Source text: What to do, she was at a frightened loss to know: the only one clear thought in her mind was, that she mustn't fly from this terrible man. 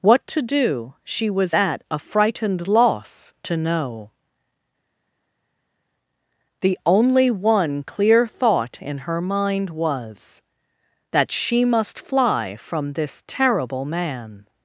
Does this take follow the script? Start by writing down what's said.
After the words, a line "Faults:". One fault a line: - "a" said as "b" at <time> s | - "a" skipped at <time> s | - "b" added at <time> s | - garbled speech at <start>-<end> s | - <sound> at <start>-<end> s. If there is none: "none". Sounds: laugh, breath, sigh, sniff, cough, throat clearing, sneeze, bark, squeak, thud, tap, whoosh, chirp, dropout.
What to do, she was at a frightened loss to know: the only one clear thought in her mind was, that she must fly from this terrible man.
Faults:
- "mustn't" said as "must" at 11.6 s